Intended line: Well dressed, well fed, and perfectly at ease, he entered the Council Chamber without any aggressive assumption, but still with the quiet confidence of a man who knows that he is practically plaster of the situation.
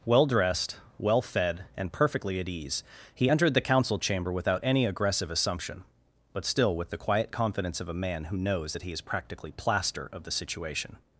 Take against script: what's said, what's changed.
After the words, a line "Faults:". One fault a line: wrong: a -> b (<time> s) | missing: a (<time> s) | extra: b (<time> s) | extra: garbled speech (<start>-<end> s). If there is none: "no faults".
Well dressed, well fed, and perfectly at ease, he entered the Council Chamber without any aggressive assumption, but still with the quiet confidence of a man who knows that he is practically plaster of the situation.
Faults:
no faults